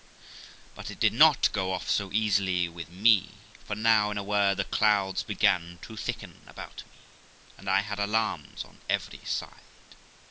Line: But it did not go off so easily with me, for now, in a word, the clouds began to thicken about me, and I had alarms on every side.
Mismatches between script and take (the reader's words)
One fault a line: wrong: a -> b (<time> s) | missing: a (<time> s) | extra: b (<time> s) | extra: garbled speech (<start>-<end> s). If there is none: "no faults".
no faults